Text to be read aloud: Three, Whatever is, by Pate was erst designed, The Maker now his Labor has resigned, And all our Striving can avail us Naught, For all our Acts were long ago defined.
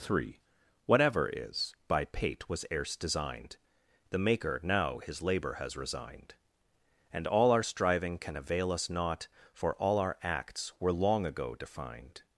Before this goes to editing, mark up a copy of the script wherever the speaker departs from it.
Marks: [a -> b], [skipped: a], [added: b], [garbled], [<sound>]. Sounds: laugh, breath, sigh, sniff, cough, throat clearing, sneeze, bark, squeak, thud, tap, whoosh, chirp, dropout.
Three, Whatever is, by Pate was erst designed, The Maker now his Labor has resigned, And all our Striving can avail us Naught, For all our Acts were long ago defined.